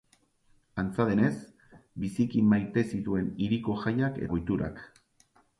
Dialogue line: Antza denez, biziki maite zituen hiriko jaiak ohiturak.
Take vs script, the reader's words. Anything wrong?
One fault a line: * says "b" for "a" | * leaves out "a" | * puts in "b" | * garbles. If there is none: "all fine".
all fine